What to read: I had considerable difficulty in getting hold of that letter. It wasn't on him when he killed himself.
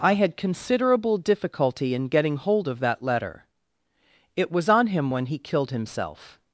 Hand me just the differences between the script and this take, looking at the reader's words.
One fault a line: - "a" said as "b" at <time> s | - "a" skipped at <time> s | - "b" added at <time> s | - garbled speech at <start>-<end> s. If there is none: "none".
- "wasn't" said as "was" at 4.5 s